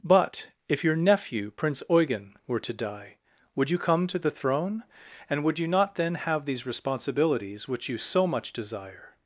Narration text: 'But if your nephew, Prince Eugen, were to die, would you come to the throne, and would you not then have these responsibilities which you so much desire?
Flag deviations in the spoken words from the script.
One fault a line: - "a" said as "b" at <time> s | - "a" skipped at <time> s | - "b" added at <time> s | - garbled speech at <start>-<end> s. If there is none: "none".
none